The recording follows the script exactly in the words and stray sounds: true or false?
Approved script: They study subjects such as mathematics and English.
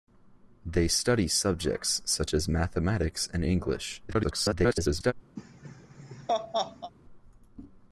false